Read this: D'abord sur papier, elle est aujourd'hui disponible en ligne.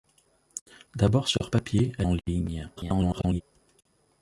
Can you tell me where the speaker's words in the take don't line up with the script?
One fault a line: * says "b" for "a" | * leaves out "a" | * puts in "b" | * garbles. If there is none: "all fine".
* leaves out "est aujourd'hui disponible"
* garbles